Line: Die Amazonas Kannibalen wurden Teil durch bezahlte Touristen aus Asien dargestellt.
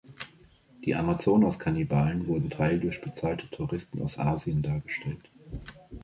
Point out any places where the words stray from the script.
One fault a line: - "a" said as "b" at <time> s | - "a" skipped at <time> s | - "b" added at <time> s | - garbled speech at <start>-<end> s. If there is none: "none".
none